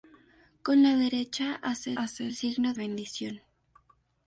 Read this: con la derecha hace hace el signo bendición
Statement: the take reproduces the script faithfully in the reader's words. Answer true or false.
true